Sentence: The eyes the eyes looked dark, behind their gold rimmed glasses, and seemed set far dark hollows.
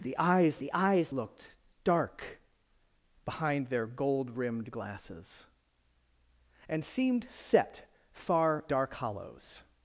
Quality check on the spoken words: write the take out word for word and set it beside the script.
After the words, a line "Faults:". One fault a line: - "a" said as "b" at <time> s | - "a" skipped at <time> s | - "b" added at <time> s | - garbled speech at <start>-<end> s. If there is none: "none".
The eyes the eyes looked dark, behind their gold rimmed glasses, and seemed set far dark hollows.
Faults:
none